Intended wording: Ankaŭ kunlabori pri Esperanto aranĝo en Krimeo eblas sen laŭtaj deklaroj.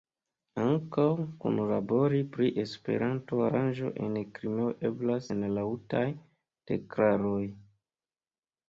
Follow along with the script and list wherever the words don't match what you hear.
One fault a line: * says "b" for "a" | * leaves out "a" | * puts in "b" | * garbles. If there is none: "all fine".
all fine